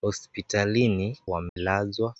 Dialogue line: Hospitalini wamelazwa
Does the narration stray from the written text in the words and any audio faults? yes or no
yes